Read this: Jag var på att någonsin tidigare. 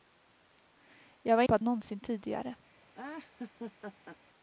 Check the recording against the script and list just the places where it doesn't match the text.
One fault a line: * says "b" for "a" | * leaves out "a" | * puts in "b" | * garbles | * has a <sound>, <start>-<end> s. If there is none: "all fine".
* has a laugh, 2.9-4.2 s